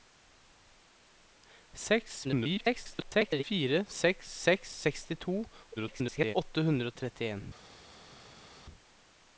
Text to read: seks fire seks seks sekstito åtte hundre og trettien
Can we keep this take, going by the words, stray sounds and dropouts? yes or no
no